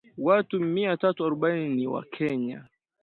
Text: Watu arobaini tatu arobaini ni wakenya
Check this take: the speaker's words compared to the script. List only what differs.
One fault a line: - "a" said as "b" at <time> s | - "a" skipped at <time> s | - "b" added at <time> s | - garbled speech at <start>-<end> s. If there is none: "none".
- "arobaini" said as "mia" at 0.6 s